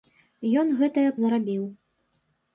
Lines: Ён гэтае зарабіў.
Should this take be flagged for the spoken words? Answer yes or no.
no